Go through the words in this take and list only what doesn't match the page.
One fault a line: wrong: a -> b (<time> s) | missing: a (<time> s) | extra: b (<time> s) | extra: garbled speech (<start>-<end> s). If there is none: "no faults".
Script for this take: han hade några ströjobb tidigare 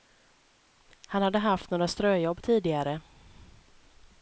extra: haft (1.4 s)